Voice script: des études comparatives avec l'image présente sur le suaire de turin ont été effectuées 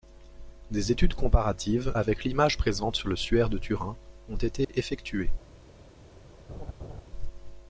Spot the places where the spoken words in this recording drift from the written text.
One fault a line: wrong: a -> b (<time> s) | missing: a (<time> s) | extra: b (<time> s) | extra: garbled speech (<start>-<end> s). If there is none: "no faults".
no faults